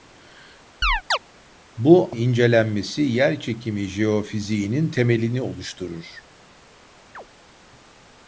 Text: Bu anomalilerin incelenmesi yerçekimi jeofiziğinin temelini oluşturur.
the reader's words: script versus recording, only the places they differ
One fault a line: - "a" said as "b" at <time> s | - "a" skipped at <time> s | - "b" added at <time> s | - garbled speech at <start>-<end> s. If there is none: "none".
- "anomalilerin" skipped at 2.2 s